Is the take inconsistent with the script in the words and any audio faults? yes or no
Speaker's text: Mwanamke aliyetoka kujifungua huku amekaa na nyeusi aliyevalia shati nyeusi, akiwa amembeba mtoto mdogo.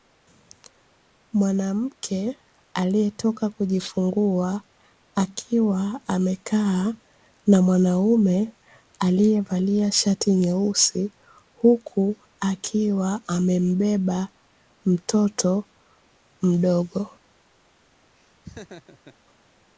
yes